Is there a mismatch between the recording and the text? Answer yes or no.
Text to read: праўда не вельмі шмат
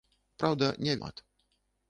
yes